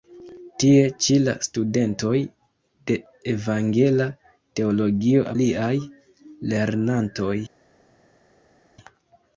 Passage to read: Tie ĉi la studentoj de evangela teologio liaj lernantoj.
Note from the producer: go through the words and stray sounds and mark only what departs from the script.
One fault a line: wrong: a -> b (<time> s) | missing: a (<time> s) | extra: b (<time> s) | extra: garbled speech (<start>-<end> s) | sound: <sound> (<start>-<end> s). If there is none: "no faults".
no faults